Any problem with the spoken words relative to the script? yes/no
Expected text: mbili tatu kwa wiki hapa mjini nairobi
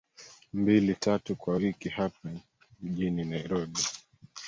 no